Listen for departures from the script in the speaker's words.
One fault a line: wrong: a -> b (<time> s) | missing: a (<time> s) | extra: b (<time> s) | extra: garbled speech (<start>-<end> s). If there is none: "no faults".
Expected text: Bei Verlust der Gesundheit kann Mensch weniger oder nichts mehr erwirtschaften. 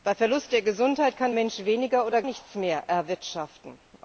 no faults